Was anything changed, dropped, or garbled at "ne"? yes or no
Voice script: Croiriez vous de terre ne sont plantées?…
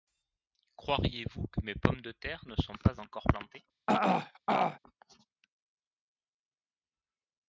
no